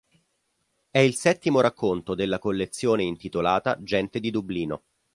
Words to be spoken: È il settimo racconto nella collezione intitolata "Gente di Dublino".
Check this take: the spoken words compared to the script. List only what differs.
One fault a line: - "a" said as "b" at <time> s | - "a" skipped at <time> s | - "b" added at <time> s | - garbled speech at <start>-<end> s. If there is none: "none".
- "nella" said as "della" at 2.1 s